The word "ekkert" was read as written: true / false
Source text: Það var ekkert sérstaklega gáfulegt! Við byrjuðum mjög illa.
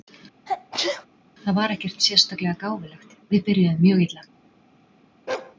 true